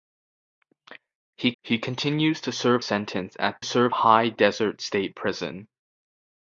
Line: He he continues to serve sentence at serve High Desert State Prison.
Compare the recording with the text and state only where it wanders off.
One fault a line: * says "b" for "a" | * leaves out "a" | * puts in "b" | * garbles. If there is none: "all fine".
all fine